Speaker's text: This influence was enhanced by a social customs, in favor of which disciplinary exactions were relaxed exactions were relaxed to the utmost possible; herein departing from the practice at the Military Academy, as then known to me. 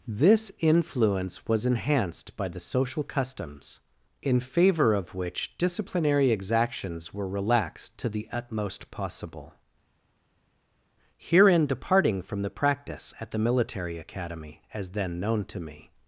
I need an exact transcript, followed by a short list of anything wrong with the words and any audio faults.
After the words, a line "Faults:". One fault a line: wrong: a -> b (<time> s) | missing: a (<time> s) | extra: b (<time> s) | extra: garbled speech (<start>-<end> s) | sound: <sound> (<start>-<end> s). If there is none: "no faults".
This influence was enhanced by the social customs, in favor of which disciplinary exactions were relaxed to the utmost possible; herein departing from the practice at the Military Academy, as then known to me.
Faults:
wrong: a -> the (2.5 s)
missing: exactions were relaxed (8.0 s)